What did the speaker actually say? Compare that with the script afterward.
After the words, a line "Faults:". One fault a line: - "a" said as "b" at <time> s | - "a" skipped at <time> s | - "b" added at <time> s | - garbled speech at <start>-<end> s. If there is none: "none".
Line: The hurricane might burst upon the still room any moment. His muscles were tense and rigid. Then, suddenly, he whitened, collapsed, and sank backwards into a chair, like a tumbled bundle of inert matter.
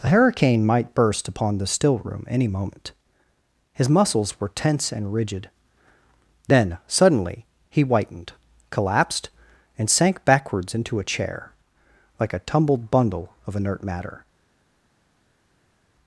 The hurricane might burst upon the still room any moment. His muscles were tense and rigid. Then, suddenly, he whitened, collapsed, and sank backwards into a chair, like a tumbled bundle of inert matter.
Faults:
none